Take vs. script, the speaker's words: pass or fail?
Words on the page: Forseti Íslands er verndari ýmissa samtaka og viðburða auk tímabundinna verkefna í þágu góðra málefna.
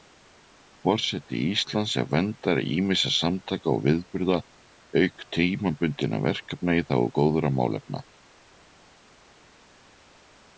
pass